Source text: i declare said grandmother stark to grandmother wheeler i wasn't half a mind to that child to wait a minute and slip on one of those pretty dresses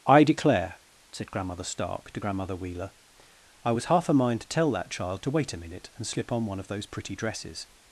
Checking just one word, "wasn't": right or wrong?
wrong